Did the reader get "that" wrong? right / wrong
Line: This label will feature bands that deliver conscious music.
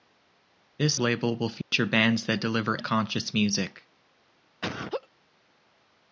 right